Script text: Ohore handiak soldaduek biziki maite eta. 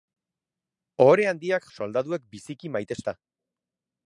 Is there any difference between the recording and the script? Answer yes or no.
no